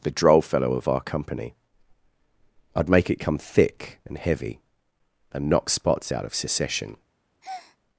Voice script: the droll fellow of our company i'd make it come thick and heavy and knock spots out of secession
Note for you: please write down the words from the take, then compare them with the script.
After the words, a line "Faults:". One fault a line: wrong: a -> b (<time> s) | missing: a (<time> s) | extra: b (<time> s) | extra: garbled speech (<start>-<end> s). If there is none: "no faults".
the droll fellow of our company i'd make it come thick and heavy and knock spots out of secession
Faults:
no faults